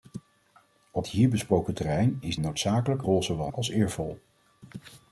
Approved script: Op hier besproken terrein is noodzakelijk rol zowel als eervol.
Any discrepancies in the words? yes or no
no